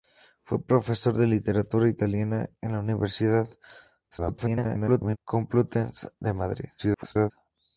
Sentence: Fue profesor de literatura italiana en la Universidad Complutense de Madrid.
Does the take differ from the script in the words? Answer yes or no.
yes